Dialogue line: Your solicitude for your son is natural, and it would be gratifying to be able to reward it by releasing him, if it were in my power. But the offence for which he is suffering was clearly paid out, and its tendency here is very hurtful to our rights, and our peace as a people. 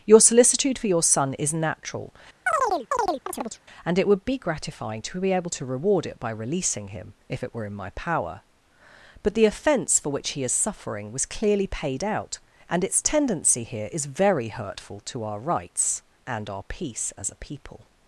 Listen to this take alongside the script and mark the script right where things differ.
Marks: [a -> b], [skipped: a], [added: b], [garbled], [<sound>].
Your solicitude for your son is natural, [chirp] and it would be gratifying to be able to reward it by releasing him, if it were in my power. But the offence for which he is suffering was clearly paid out, and its tendency here is very hurtful to our rights, and our peace as a people.